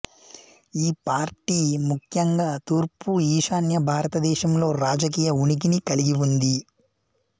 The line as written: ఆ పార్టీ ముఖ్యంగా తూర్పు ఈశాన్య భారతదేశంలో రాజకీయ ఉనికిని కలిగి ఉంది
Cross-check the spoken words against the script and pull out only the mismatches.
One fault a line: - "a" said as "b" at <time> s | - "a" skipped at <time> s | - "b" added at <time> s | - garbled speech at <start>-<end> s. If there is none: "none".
- "ఆ" said as "ఈ" at 0.8 s